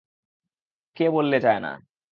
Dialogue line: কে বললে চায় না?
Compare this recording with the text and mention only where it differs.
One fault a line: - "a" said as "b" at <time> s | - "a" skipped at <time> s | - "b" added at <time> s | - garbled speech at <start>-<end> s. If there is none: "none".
none